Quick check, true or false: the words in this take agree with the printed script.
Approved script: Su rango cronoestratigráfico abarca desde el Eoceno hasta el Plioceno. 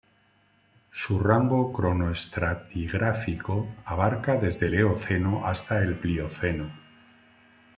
true